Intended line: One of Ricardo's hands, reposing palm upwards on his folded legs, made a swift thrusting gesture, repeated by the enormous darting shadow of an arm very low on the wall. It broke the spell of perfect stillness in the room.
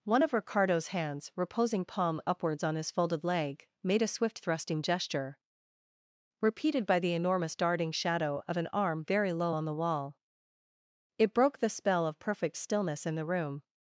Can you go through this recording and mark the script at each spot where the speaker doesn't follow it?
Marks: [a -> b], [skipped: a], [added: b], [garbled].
One of Ricardo's hands, reposing palm upwards on his folded [legs, -> leg] made a swift thrusting gesture, repeated by the enormous darting shadow of an arm very low on the wall. It broke the spell of perfect stillness in the room.